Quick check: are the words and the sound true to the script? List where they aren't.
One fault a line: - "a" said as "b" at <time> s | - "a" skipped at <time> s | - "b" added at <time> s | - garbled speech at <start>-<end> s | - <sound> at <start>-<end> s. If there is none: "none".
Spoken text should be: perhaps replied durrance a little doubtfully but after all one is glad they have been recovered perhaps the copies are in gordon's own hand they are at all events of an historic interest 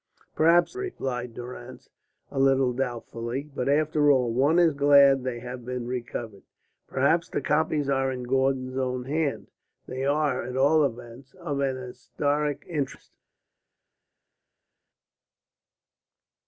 none